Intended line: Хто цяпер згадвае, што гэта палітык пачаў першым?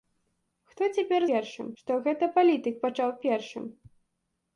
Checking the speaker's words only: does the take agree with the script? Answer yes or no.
no